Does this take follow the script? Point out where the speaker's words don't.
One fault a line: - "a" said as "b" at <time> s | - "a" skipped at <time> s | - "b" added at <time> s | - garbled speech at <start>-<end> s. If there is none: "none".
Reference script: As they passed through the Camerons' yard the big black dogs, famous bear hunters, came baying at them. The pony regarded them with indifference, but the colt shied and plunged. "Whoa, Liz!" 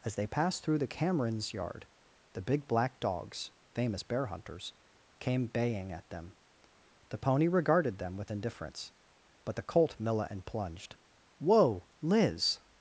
- "shied" said as "milla" at 10.0 s